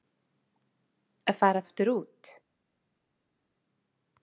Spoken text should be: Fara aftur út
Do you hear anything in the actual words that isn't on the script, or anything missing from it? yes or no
no